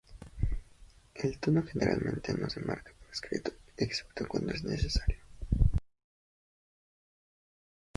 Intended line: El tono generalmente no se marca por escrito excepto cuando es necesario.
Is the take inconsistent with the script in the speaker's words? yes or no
no